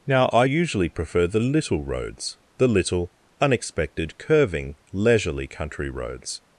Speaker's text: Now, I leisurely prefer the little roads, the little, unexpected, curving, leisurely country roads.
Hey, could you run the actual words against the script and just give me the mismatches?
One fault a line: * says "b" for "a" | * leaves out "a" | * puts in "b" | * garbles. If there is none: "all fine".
* says "usually" for "leisurely"